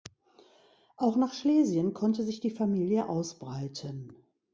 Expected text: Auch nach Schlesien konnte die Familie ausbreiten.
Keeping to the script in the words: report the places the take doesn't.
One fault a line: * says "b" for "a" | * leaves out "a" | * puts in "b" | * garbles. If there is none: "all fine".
* puts in "sich"